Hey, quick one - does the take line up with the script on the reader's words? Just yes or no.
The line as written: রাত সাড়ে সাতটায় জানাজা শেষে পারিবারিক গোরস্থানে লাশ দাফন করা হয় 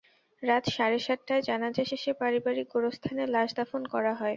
yes